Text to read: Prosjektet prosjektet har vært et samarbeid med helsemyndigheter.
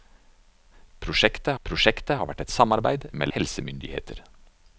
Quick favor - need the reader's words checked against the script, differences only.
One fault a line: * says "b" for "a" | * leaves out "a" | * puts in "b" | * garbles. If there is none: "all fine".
all fine